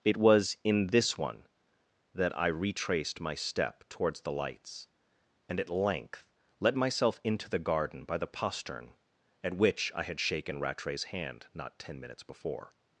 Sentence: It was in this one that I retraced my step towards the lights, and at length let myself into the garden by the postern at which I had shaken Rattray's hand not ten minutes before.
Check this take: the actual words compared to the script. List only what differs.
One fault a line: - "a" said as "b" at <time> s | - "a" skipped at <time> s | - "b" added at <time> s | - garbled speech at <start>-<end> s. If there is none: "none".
none